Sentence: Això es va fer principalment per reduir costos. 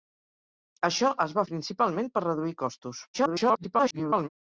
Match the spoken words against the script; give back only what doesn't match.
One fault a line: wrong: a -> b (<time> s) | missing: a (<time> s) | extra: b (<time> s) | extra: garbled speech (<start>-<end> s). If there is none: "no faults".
missing: fer (1.4 s)
extra: garbled speech (3.1-4.3 s)